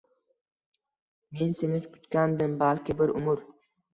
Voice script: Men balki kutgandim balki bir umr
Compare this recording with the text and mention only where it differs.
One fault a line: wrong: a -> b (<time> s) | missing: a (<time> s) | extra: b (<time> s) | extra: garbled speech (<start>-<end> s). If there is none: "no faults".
wrong: balki -> seni (1.6 s)